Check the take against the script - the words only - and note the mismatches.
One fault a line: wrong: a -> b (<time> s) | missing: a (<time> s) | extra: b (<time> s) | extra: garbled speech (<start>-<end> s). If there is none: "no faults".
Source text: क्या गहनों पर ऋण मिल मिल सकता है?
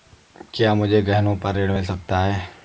extra: मुझे (0.8 s)
missing: मिल (1.8 s)